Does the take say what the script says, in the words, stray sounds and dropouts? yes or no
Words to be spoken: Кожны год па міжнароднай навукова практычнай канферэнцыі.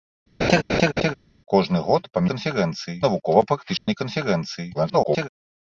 no